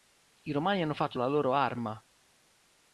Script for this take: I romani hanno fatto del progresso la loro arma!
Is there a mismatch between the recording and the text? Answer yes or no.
yes